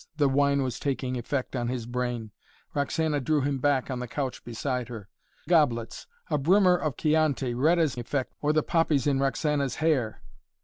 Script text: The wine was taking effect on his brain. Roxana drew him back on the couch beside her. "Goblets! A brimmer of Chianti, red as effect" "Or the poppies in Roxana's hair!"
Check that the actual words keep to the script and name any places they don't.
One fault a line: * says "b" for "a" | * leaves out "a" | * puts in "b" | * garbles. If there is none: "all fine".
all fine